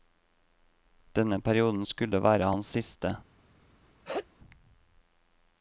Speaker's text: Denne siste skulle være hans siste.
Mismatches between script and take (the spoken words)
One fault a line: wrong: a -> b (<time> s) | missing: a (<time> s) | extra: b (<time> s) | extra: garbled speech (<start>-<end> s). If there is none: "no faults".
wrong: siste -> perioden (1.4 s)